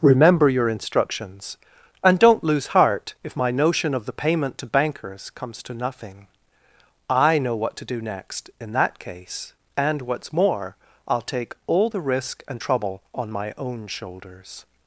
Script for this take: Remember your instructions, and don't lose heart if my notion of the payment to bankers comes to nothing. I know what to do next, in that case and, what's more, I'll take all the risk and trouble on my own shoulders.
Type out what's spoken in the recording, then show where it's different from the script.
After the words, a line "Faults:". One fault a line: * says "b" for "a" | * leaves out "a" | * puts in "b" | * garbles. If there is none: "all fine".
Remember your instructions, and don't lose heart if my notion of the payment to bankers comes to nothing. I know what to do next, in that case and, what's more, I'll take all the risk and trouble on my own shoulders.
Faults:
all fine